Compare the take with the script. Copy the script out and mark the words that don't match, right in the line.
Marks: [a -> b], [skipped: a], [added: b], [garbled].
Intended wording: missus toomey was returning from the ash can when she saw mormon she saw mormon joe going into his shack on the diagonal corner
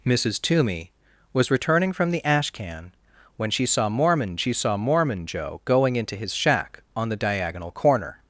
missus toomey was returning from the ash can when she saw mormon she saw mormon joe going into his shack on the diagonal corner